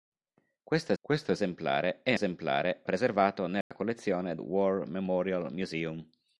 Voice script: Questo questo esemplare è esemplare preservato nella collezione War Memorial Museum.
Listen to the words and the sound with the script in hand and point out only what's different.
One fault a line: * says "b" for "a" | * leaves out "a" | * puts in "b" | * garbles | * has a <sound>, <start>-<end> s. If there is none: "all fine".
* has a dropout, 3.6-3.7 s